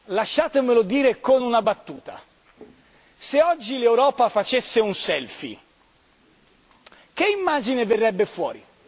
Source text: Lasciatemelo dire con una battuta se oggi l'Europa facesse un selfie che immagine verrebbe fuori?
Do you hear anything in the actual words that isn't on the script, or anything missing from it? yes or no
no